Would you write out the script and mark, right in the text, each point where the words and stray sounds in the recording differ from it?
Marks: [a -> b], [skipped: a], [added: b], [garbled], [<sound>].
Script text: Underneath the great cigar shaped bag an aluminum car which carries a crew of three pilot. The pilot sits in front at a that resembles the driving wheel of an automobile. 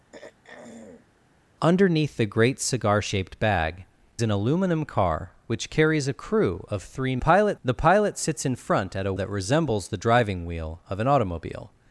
[throat clearing] Underneath the great cigar shaped bag an aluminum car which carries a crew of three pilot. The pilot sits in front at a that resembles the driving wheel of an automobile.